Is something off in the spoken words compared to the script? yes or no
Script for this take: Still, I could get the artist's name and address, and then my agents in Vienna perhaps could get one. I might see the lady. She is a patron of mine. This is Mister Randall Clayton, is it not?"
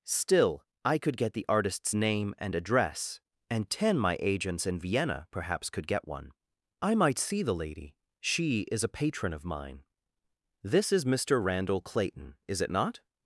yes